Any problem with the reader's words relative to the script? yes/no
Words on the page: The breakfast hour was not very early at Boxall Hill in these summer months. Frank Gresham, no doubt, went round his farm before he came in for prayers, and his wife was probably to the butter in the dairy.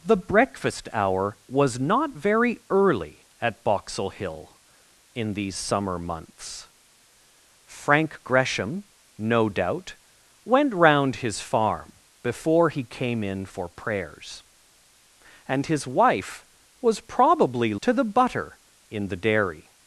no